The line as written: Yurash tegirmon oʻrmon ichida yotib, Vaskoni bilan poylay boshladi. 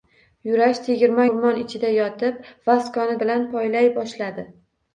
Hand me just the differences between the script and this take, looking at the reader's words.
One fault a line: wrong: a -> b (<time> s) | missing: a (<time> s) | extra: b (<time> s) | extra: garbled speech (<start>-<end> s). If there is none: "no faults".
no faults